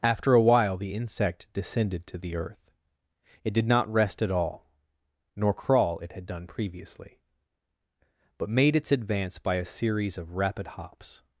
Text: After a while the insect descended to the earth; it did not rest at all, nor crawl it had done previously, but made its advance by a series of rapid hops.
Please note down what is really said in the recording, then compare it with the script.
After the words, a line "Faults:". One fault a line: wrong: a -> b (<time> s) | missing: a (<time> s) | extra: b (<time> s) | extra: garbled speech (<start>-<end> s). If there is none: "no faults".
After a while the insect descended to the earth; it did not rest at all, nor crawl it had done previously, but made its advance by a series of rapid hops.
Faults:
no faults